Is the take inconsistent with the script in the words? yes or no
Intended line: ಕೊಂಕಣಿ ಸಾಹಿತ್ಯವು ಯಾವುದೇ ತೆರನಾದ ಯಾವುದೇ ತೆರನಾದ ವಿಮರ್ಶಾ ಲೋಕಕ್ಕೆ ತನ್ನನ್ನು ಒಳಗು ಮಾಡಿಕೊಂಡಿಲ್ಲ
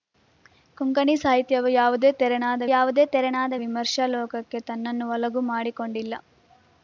no